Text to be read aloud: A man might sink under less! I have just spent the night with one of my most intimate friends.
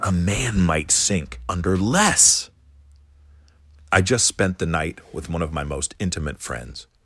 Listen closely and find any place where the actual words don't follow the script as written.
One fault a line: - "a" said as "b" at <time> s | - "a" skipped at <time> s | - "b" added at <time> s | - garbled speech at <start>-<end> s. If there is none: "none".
- "have" skipped at 4.0 s